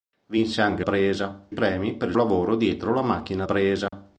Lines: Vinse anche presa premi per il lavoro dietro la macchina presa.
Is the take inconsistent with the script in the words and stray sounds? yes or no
yes